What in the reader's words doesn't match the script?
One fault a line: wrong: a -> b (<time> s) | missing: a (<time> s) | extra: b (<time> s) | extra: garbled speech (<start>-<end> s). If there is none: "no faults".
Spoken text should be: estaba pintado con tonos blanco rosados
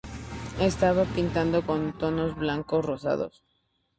no faults